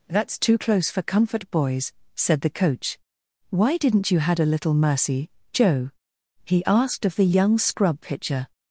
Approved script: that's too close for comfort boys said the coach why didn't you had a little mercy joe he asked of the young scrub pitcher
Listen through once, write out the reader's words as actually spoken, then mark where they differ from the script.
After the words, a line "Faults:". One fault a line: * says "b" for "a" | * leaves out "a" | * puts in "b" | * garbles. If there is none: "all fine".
that's too close for comfort boys said the coach why didn't you had a little mercy joe he asked of the young scrub pitcher
Faults:
all fine